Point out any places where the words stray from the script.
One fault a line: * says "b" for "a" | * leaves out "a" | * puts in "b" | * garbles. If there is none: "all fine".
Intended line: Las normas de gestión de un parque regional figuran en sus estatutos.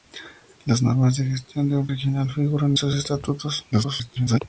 * leaves out "parque"
* leaves out "en"
* garbles